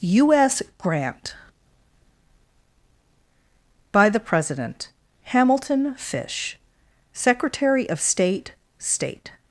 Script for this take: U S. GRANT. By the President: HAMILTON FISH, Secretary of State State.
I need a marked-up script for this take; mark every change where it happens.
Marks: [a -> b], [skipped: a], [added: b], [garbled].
U S. GRANT. By the President: HAMILTON FISH, Secretary of State State.